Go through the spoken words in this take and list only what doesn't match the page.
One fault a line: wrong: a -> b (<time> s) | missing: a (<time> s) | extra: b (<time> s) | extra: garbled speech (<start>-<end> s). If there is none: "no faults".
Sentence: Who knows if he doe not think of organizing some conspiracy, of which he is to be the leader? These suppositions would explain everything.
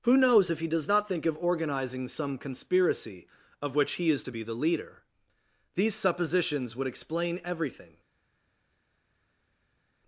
wrong: doe -> does (0.7 s)